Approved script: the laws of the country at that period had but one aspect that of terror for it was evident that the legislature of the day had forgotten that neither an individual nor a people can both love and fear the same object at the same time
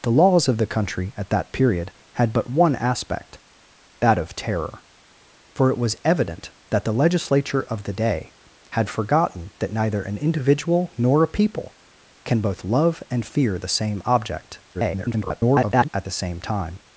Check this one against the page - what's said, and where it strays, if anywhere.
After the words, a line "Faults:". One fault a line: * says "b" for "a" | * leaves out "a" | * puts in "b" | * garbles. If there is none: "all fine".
the laws of the country at that period had but one aspect that of terror for it was evident that the legislature of the day had forgotten that neither an individual nor a people can both love and fear the same object [garbled] at the same time
Faults:
* garbles